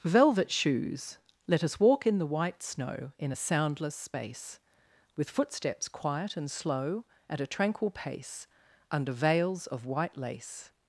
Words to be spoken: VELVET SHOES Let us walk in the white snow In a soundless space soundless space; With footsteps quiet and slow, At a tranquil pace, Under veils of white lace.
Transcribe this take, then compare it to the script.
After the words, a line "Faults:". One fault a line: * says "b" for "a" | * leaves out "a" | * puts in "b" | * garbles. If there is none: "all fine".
VELVET SHOES Let us walk in the white snow In a soundless space; With footsteps quiet and slow, At a tranquil pace, Under veils of white lace.
Faults:
* leaves out "soundless space"